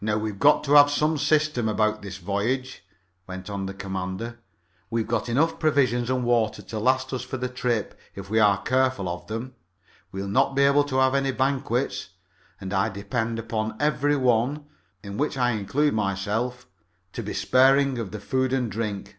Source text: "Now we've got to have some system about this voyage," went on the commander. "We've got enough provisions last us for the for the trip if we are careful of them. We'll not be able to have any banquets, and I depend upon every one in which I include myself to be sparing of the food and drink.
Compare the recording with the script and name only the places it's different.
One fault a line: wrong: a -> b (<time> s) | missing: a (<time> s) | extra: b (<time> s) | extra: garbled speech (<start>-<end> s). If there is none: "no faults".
extra: and water to (6.1 s)
missing: for the (7.5 s)